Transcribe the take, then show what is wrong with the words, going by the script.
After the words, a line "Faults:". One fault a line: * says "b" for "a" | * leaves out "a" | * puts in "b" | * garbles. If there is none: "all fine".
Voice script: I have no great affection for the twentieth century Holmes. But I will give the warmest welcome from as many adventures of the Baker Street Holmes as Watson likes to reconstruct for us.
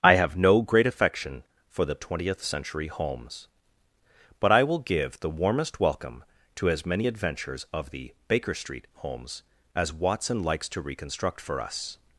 I have no great affection for the twentieth century Holmes. But I will give the warmest welcome to as many adventures of the Baker Street Holmes as Watson likes to reconstruct for us.
Faults:
* says "to" for "from"